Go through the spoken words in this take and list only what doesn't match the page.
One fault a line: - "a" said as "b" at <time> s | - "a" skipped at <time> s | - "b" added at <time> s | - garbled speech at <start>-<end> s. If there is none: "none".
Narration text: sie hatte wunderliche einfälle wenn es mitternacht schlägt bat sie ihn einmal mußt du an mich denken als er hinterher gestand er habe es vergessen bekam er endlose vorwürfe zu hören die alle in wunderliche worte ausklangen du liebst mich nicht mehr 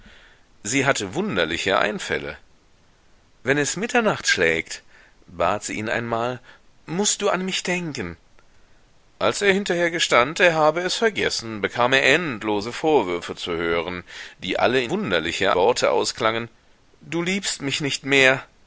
none